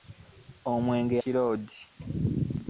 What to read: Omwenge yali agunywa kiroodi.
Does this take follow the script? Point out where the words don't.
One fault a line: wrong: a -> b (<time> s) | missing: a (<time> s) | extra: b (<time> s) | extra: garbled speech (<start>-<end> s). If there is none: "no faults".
missing: yali agunywa (1.1 s)